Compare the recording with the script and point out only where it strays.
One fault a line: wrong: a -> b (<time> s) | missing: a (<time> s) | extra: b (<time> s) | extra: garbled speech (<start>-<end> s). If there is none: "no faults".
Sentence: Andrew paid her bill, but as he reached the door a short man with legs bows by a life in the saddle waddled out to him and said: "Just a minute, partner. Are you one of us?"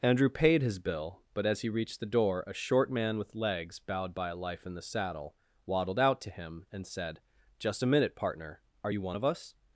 wrong: her -> his (0.6 s)
wrong: bows -> bowed (3.8 s)